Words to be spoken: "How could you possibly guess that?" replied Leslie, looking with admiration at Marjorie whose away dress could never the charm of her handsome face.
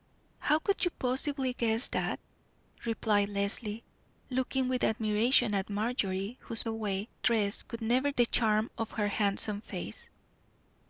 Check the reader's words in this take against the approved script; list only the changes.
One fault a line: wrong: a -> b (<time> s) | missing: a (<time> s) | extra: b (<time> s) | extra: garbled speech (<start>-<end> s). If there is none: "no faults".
no faults